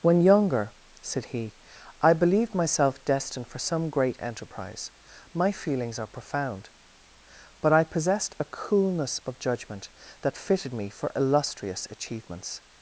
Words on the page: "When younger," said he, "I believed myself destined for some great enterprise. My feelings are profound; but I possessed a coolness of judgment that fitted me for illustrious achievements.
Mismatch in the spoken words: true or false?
false